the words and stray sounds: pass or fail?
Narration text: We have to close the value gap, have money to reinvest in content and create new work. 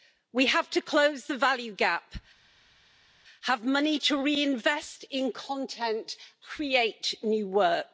fail